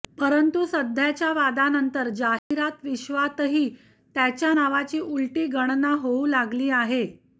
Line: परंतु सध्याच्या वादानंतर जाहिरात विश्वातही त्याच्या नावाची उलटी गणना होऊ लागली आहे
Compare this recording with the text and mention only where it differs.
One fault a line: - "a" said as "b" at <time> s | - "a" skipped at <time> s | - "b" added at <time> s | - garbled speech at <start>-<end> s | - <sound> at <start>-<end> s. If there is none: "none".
- dropout at 2.4-2.5 s